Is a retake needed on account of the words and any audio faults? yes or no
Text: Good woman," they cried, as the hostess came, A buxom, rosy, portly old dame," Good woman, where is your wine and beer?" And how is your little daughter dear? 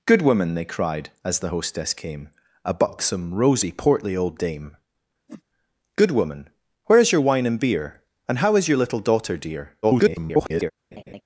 yes